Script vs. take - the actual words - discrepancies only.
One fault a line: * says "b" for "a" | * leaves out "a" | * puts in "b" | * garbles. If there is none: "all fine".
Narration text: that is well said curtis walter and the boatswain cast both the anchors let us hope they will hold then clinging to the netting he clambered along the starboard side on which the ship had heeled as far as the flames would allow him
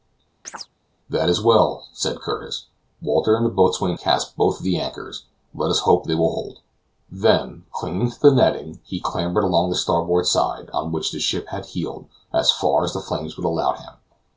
all fine